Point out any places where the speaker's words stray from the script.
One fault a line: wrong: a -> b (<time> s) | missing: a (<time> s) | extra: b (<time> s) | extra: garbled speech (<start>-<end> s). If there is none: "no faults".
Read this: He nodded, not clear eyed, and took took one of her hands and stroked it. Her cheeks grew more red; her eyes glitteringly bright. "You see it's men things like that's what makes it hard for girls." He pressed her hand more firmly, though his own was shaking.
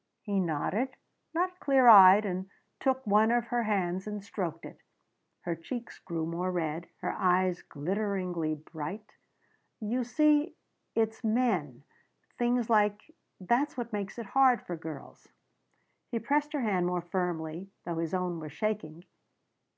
missing: took (3.0 s)